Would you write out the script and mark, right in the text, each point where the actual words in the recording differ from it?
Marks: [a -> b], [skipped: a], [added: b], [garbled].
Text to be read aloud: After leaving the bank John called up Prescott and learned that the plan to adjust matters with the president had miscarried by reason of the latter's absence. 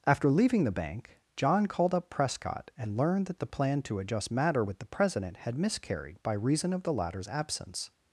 After leaving the bank John called up Prescott and learned that the plan to adjust [matters -> matter] with the president had miscarried by reason of the latter's absence.